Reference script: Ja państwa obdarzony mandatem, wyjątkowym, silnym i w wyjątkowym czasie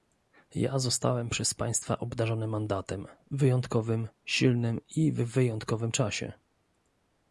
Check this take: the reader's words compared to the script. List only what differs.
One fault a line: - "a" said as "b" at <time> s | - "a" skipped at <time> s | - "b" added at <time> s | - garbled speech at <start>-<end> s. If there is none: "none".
- "zostałem przez" added at 0.8 s